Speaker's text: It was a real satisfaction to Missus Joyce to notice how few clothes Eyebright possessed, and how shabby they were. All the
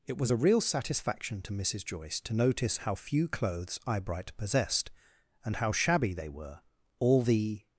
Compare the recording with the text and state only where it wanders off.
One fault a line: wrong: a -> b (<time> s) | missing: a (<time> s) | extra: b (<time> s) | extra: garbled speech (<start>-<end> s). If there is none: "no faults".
no faults